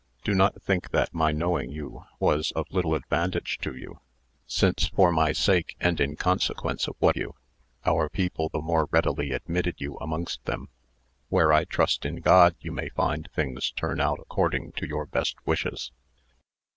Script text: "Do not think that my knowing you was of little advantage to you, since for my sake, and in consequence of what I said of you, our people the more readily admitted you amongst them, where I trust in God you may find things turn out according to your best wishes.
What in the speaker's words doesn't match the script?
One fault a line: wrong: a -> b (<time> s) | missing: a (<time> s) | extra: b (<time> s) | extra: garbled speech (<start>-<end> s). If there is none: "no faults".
missing: I said of (7.2 s)